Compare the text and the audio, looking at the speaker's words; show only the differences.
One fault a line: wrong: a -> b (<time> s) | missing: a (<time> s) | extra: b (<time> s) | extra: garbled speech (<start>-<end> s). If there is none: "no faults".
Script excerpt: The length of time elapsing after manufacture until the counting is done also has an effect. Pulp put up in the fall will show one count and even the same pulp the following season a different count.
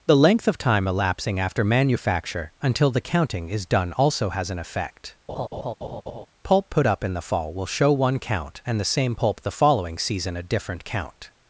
missing: even (8.8 s)